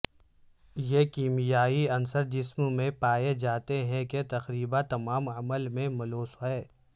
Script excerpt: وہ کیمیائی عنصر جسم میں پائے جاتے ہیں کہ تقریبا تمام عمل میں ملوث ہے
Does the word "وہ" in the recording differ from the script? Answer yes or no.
yes